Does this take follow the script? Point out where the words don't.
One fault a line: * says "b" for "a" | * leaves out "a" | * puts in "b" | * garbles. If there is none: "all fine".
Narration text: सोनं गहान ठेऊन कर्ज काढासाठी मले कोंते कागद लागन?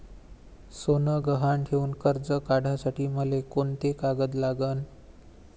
all fine